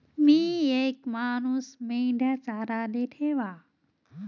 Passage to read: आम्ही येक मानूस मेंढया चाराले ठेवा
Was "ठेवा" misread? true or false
false